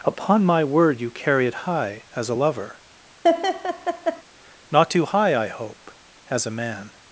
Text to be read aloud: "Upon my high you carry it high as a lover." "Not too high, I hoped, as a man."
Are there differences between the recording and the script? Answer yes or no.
yes